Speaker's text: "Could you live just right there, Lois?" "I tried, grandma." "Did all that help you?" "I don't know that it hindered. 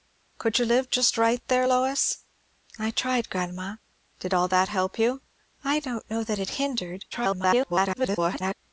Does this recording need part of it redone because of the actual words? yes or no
yes